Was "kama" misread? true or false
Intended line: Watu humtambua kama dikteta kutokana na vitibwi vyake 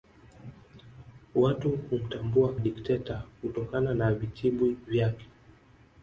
true